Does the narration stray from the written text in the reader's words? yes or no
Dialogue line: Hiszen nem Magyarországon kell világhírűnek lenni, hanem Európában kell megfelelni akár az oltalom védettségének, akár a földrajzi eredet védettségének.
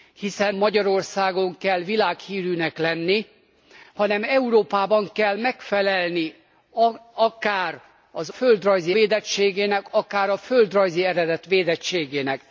yes